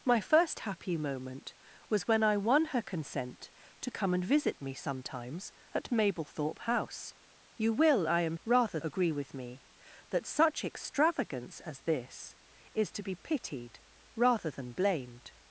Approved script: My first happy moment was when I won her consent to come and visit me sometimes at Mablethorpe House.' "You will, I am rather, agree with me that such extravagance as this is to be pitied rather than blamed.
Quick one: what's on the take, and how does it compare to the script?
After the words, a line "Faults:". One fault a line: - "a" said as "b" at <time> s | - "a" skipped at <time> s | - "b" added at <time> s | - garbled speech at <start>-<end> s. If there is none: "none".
My first happy moment was when I won her consent to come and visit me sometimes at Mablethorpe House.' "You will, I am rather, agree with me that such extravagance as this is to be pitied rather than blamed.
Faults:
none